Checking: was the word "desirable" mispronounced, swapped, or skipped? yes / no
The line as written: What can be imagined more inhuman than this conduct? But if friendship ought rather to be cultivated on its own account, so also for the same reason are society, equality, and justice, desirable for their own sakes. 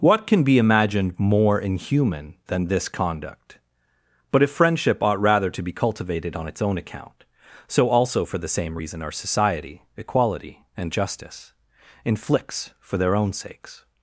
yes